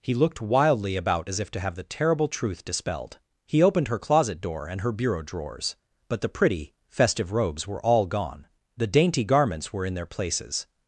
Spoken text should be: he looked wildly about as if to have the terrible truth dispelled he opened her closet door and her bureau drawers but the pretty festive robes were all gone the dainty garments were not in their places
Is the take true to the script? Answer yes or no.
no